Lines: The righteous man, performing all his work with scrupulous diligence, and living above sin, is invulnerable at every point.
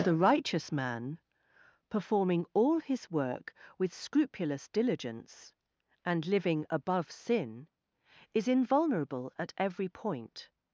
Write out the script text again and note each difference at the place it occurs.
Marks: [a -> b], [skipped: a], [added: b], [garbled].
The righteous man, performing all his work with scrupulous diligence, and living above sin, is invulnerable at every point.